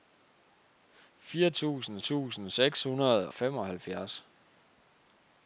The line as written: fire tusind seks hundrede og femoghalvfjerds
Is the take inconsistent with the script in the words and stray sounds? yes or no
yes